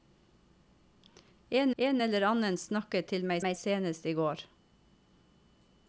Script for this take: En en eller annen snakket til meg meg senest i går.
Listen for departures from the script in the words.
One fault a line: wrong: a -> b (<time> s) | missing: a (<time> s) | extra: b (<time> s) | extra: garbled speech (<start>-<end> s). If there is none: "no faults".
no faults